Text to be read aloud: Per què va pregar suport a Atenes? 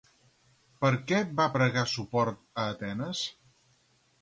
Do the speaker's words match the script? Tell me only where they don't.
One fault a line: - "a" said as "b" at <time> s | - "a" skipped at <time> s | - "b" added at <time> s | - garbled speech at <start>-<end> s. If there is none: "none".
none